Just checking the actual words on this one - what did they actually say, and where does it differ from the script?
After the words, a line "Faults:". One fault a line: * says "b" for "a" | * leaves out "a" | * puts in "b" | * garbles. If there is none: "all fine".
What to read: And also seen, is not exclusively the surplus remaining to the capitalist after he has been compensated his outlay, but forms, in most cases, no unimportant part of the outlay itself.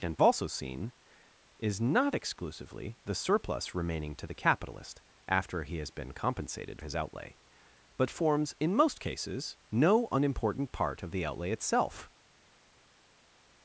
And also seen, is not exclusively the surplus remaining to the capitalist after he has been compensated his outlay, but forms, in most cases, no unimportant part of the outlay itself.
Faults:
all fine